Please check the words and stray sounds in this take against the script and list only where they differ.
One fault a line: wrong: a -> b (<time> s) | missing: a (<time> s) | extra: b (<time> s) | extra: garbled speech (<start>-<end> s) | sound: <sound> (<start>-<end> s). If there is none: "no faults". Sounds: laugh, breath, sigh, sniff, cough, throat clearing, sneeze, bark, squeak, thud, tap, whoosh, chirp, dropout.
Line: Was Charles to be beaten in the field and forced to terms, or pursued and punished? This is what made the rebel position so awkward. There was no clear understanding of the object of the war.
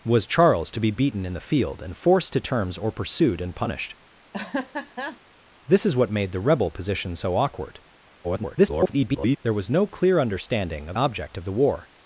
sound: laugh (4.3-5.2 s)
extra: garbled speech (8.2-9.4 s)
missing: the (11.0 s)